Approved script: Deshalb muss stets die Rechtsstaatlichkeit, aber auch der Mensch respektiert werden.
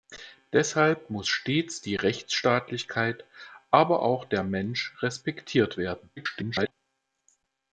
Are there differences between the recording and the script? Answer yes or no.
yes